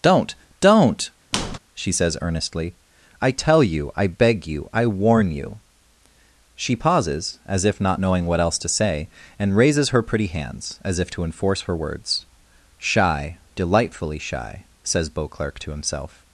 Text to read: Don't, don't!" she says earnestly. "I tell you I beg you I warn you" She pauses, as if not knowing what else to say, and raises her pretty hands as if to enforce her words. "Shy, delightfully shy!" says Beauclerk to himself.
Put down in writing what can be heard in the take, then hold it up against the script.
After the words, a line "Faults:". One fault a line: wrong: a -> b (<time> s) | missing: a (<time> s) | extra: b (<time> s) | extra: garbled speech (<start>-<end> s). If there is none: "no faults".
Don't, don't!" she says earnestly. "I tell you I beg you I warn you" She pauses, as if not knowing what else to say, and raises her pretty hands as if to enforce her words. "Shy, delightfully shy!" says Beauclerk to himself.
Faults:
no faults